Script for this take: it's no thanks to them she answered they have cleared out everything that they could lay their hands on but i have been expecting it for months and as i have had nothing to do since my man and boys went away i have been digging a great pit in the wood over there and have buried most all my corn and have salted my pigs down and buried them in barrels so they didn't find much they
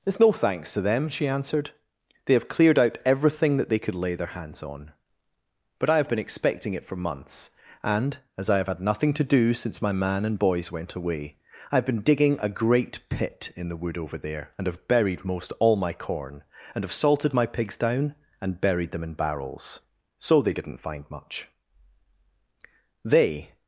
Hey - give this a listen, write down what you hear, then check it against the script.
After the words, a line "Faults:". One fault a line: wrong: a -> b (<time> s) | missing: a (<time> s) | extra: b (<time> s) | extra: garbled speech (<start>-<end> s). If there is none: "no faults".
it's no thanks to them she answered they have cleared out everything that they could lay their hands on but i have been expecting it for months and as i have had nothing to do since my man and boys went away i have been digging a great pit in the wood over there and have buried most all my corn and have salted my pigs down and buried them in barrels so they didn't find much they
Faults:
no faults